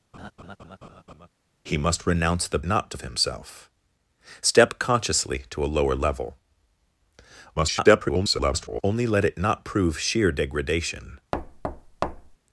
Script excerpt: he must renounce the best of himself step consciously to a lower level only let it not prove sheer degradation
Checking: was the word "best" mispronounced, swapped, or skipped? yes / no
yes